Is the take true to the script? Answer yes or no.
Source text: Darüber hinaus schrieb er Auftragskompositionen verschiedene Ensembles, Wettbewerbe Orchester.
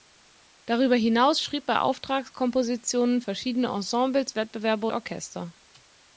yes